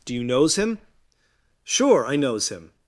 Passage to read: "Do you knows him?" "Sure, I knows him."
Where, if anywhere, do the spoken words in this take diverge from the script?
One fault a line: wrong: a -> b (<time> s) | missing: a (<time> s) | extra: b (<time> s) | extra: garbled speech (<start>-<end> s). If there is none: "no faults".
no faults